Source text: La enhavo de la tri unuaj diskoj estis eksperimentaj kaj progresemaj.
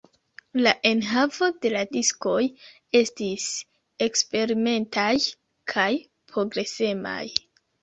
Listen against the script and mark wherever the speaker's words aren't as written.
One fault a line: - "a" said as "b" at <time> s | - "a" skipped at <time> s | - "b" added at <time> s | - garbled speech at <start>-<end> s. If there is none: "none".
- "tri unuaj" skipped at 1.8 s